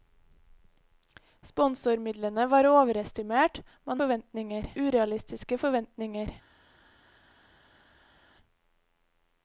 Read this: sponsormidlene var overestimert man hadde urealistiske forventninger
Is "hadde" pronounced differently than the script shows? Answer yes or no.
yes